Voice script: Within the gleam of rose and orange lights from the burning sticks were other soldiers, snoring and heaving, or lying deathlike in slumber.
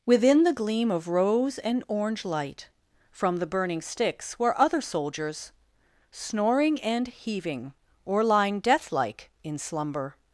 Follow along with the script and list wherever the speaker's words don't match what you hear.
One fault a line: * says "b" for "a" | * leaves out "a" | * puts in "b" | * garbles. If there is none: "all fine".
* says "light" for "lights"